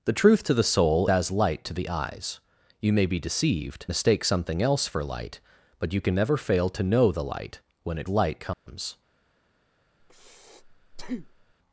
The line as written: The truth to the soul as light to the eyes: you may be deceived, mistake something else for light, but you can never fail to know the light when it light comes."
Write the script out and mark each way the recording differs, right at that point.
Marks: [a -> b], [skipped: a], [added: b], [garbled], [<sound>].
The truth to the soul as light to the eyes: you may be deceived, mistake something else for light, but you can never fail to know the light when it light comes." [dropout] [breath]